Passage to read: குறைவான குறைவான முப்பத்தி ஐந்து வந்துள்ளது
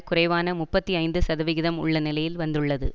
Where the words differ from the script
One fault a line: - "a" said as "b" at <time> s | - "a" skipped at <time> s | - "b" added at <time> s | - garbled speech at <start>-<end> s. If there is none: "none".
- "குறைவான" skipped at 0.5 s
- "சதவிகிதம் உள்ள நிலையில்" added at 1.2 s